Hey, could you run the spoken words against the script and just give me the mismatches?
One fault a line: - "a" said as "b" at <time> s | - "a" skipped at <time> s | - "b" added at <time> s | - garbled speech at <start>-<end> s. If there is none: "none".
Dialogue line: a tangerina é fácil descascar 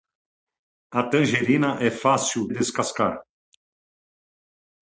none